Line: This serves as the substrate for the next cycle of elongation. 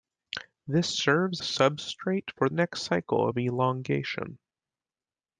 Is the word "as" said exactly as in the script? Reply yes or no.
no